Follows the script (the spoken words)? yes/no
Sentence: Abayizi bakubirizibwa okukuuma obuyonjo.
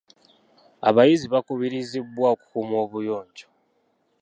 yes